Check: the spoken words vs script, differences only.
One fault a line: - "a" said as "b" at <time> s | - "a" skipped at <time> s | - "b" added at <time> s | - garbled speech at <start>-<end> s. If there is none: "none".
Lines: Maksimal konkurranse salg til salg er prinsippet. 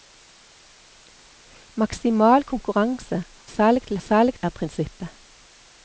none